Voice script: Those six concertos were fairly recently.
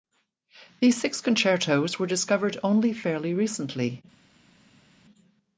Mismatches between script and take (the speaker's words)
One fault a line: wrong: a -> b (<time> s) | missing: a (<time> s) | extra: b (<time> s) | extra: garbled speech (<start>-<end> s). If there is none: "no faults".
wrong: Those -> These (0.8 s)
extra: discovered only (2.1 s)